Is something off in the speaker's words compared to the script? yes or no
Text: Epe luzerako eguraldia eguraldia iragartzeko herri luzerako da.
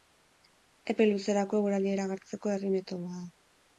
yes